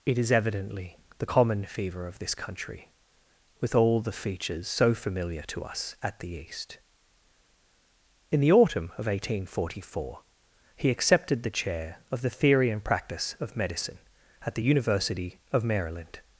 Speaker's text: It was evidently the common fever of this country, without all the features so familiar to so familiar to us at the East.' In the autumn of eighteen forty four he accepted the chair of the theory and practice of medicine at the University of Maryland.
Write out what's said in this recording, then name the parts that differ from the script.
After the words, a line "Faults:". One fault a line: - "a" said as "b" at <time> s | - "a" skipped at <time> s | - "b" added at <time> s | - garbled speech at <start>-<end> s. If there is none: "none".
It is evidently the common fever of this country, with all the features so familiar to us at the East.' In the autumn of eighteen forty four he accepted the chair of the theory and practice of medicine at the University of Maryland.
Faults:
- "was" said as "is" at 0.2 s
- "without" said as "with" at 3.6 s
- "so familiar to" skipped at 5.6 s